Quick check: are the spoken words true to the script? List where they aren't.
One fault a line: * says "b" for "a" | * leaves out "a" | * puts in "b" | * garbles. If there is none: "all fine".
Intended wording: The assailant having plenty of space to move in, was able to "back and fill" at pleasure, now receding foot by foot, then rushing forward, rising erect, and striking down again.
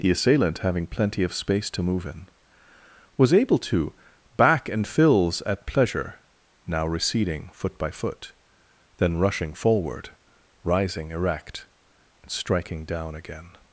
* says "fills" for "fill"